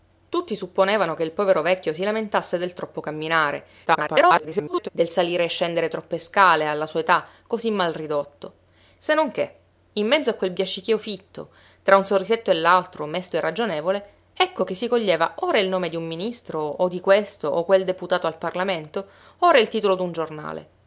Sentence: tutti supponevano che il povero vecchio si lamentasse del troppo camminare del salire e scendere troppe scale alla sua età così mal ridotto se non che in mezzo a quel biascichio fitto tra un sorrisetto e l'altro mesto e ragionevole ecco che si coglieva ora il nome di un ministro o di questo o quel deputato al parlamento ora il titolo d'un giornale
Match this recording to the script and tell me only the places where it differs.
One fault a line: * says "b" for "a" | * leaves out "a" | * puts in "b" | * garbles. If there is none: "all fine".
* garbles